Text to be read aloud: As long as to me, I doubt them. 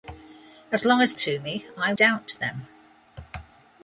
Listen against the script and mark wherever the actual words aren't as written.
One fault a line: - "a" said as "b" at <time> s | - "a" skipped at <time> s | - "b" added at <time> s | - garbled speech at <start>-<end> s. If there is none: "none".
none